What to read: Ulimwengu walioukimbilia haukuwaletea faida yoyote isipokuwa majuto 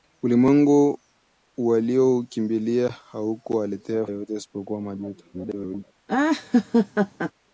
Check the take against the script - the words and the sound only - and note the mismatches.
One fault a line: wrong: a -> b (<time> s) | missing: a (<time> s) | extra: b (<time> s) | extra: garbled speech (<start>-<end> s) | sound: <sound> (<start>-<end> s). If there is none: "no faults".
missing: faida (4.1 s)
extra: garbled speech (5.3-5.8 s)
sound: laugh (6.1-7.3 s)